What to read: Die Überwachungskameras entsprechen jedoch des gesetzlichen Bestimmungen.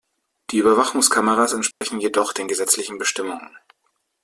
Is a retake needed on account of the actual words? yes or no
yes